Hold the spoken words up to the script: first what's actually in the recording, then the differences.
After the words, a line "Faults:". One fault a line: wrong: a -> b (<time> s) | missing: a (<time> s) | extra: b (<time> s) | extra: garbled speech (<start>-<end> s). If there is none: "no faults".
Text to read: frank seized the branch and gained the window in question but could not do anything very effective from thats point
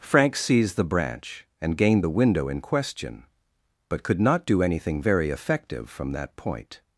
frank seized the branch and gained the window in question but could not do anything very effective from that point
Faults:
wrong: thats -> that (6.1 s)